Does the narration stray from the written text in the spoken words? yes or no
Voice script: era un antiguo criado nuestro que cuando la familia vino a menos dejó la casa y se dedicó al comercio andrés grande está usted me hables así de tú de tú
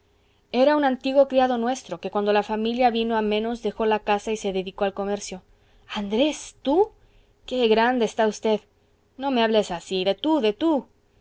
yes